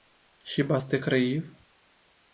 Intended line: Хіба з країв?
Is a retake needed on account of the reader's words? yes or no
yes